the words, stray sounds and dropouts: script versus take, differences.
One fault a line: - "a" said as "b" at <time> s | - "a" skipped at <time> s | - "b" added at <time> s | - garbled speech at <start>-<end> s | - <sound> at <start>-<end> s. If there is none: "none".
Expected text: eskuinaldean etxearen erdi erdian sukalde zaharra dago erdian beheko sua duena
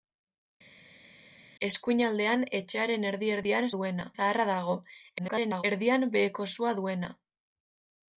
- "sukalde" said as "duena" at 3.8 s
- garbled speech at 5.2-5.6 s